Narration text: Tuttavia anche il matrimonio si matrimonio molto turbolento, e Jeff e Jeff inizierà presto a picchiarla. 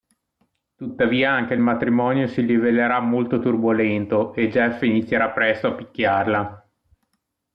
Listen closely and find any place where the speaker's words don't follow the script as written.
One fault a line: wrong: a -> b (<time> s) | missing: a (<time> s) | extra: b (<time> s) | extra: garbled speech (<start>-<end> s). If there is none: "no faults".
wrong: matrimonio -> rivelerà (2.4 s)
missing: e Jeff (4.8 s)